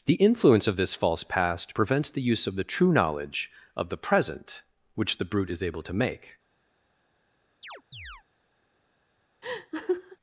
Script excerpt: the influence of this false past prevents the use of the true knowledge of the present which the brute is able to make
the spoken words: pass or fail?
pass